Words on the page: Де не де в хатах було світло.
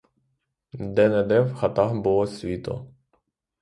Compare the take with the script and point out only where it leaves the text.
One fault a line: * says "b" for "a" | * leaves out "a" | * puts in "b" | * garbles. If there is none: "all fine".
all fine